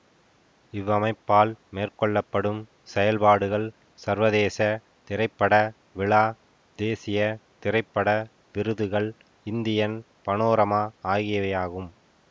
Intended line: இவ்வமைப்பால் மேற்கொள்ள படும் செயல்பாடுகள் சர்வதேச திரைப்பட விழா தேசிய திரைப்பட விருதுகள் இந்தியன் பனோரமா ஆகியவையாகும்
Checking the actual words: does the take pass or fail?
pass